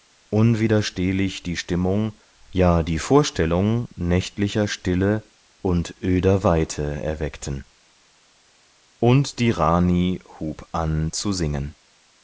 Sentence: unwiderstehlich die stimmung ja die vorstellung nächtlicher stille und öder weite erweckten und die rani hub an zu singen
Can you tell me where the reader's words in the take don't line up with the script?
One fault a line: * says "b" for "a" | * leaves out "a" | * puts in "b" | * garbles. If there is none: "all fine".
all fine